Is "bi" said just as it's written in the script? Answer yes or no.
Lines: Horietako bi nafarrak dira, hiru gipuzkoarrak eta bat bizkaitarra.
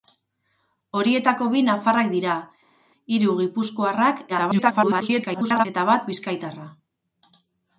yes